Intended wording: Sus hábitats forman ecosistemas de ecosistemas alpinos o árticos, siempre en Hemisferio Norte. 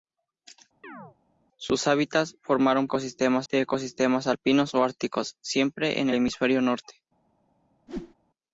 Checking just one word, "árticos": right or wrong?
right